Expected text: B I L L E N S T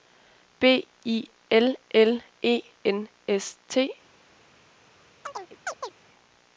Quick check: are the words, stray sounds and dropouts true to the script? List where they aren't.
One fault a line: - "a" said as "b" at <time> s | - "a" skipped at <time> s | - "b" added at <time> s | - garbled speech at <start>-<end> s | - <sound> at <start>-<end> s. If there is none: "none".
- chirp at 5.2-5.9 s